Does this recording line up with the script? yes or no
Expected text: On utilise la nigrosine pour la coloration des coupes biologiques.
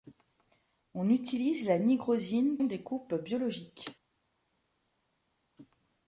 no